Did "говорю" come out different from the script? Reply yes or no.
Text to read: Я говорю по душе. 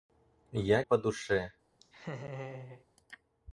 yes